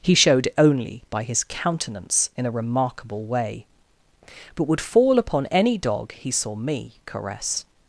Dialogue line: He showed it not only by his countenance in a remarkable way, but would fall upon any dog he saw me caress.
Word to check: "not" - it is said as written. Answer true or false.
false